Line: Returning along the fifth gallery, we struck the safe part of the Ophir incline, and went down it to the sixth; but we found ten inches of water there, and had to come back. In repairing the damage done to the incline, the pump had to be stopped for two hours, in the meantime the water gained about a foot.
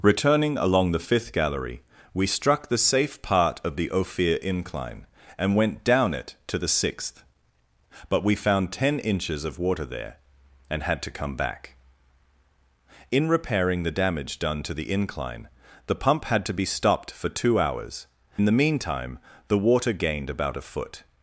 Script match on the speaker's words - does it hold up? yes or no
yes